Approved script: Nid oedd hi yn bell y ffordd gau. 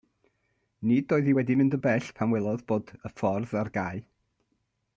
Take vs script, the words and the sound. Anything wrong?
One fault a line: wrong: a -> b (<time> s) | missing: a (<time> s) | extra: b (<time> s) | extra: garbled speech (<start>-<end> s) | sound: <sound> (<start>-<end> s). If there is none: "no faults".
extra: wedi mynd (1.4 s)
extra: pan welodd bod (2.2 s)
extra: ar (3.6 s)